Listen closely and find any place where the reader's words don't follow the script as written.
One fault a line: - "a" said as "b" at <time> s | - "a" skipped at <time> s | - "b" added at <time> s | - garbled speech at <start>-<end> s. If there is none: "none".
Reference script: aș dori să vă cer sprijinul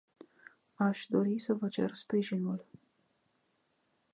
none